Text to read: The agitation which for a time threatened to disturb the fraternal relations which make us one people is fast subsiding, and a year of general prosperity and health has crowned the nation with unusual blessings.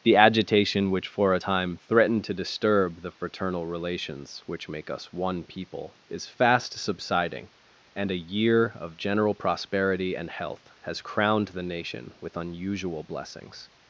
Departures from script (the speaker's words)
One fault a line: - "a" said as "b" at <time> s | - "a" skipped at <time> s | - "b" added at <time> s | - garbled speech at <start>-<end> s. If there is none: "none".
none